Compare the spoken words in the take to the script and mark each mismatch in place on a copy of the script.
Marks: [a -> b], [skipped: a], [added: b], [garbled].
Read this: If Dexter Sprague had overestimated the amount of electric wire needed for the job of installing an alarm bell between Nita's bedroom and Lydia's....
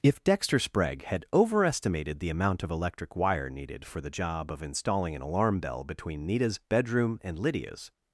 If Dexter Sprague had overestimated the amount of electric wire needed for the job of installing an alarm bell between Nita's bedroom and Lydia's....